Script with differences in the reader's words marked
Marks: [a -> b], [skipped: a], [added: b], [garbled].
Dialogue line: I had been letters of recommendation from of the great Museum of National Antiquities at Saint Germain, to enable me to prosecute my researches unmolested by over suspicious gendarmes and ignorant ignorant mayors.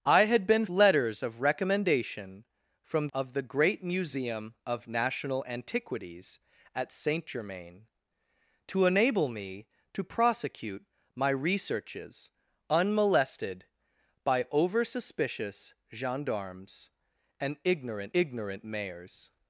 I had been letters of recommendation from of the great Museum of National Antiquities at Saint Germain, to enable me to prosecute my researches unmolested by over suspicious gendarmes and ignorant ignorant mayors.